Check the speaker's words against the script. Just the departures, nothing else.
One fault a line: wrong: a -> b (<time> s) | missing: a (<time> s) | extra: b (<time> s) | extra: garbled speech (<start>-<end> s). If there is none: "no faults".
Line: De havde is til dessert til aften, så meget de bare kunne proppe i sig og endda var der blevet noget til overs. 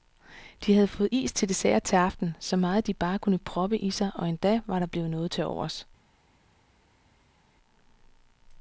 extra: fået (0.9 s)